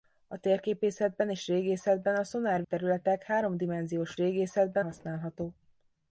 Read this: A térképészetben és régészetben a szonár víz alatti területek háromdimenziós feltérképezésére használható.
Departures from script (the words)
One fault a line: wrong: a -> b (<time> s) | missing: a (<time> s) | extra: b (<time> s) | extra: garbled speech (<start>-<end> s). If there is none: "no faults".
missing: víz alatti (2.6 s)
wrong: feltérképezésére -> régészetben (4.2 s)